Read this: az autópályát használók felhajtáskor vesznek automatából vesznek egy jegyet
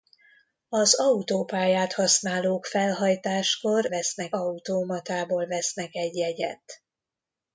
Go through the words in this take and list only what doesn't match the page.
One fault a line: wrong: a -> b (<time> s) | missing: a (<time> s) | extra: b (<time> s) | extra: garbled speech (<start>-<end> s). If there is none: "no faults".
no faults